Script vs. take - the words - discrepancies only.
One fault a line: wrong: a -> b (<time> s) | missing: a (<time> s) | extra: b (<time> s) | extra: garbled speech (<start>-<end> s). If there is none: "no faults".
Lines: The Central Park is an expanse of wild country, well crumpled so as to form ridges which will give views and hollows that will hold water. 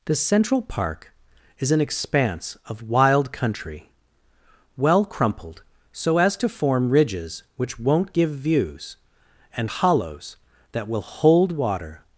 wrong: will -> won't (7.8 s)